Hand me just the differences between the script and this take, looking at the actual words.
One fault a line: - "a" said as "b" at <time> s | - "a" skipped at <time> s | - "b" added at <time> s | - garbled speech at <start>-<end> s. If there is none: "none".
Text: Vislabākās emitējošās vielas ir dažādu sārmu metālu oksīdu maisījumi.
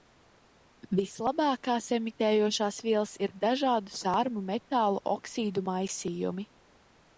none